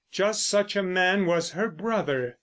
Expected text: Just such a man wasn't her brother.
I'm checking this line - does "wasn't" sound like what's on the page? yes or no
no